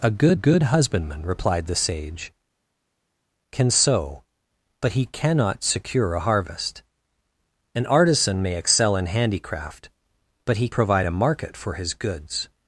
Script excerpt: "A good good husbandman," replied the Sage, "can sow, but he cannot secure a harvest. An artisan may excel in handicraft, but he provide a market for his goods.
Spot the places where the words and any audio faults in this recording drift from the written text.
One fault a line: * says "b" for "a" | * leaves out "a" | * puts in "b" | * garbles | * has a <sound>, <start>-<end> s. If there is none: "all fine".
all fine